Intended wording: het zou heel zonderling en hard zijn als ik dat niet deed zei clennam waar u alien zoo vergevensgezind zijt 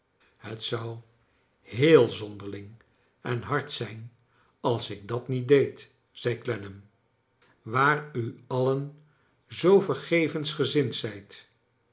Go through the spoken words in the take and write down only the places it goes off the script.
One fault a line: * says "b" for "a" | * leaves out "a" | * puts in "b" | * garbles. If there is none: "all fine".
all fine